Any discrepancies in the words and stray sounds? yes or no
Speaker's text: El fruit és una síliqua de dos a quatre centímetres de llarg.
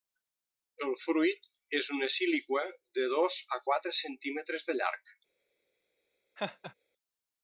yes